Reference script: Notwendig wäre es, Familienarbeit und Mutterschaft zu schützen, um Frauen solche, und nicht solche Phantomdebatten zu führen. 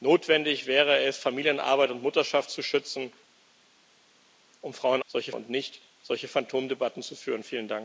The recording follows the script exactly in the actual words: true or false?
true